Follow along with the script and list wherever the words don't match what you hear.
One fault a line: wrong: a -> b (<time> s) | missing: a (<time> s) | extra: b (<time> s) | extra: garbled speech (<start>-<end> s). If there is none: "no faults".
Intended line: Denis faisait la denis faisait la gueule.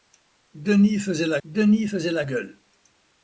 no faults